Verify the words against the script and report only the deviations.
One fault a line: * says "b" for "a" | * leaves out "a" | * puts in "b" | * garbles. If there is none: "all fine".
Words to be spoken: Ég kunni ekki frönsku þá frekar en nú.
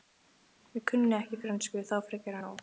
all fine